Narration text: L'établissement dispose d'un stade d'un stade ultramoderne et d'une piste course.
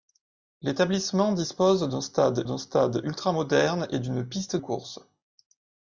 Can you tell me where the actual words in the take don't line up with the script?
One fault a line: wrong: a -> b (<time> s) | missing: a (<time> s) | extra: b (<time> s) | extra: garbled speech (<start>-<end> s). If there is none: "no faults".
no faults